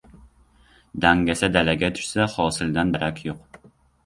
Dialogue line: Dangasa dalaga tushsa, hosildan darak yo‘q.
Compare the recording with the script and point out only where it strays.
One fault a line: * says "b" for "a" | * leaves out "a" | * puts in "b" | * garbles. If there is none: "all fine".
all fine